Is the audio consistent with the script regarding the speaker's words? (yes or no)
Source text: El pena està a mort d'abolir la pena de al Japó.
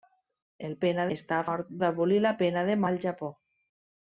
yes